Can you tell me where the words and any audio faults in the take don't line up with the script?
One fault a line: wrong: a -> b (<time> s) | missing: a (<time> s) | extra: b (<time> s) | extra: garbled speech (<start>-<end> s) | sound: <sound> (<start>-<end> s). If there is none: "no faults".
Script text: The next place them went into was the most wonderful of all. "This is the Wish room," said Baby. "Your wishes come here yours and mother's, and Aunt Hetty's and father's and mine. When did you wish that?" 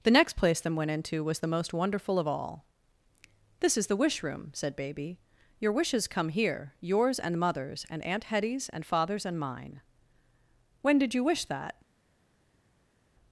no faults